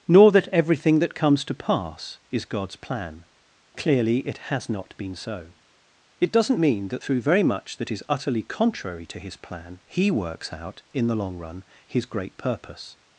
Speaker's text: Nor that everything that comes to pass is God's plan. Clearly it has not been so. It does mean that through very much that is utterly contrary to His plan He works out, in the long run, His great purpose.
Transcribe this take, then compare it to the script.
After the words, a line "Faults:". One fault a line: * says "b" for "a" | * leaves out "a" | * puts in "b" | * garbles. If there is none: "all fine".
Nor that everything that comes to pass is God's plan. Clearly it has not been so. It doesn't mean that through very much that is utterly contrary to His plan He works out, in the long run, His great purpose.
Faults:
* says "doesn't" for "does"